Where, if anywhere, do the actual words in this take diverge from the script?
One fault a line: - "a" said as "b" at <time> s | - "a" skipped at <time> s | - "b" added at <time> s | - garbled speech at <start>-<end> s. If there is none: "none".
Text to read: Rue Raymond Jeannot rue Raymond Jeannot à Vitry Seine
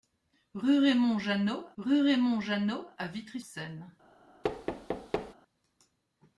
none